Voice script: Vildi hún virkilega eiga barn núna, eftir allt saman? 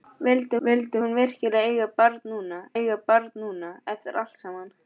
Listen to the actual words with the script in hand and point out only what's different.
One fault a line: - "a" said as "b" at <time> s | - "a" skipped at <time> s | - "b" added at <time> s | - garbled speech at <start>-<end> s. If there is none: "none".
- "vildi" added at 0.7 s
- "eiga barn núna" added at 2.8 s